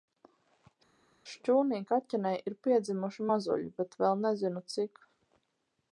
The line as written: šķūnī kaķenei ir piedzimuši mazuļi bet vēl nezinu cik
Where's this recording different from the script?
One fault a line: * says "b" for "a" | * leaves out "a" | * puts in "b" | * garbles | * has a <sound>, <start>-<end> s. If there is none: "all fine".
all fine